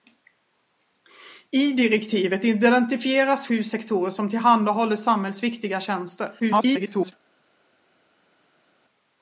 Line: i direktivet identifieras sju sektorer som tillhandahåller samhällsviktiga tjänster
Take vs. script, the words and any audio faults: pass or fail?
fail